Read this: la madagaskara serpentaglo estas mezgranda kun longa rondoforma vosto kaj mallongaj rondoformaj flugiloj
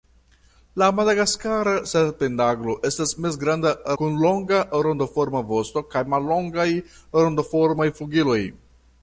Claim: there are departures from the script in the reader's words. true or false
false